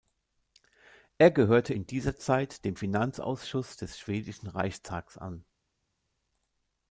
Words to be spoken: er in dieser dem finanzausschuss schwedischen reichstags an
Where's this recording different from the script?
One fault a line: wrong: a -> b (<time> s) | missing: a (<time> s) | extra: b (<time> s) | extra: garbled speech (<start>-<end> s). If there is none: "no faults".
extra: gehörte (1.3 s)
extra: zeit (2.2 s)
extra: des (3.8 s)